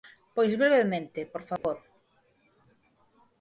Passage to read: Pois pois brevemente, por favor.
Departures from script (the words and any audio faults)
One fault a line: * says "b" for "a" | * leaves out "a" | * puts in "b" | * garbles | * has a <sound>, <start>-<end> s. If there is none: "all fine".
* leaves out "pois"
* has a dropout, 1.6-1.6 s